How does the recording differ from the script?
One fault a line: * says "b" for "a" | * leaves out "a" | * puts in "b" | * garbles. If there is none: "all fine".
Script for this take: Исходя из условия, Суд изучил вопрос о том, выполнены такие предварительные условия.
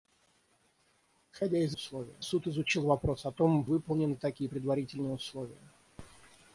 all fine